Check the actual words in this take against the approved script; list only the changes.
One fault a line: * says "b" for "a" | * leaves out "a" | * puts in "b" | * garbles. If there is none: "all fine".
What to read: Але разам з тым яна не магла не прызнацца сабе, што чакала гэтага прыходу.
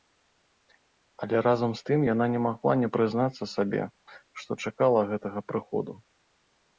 all fine